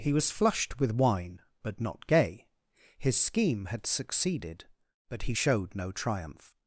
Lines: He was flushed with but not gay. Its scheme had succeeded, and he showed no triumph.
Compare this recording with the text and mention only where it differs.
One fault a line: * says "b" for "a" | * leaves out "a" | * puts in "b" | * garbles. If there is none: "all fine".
* puts in "wine"
* says "His" for "Its"
* says "but" for "and"